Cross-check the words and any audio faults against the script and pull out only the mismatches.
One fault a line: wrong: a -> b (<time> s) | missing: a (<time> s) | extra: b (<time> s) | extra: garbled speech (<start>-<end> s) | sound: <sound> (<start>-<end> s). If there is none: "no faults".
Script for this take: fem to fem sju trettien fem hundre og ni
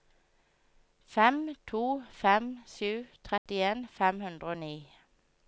sound: dropout (3.4-3.5 s)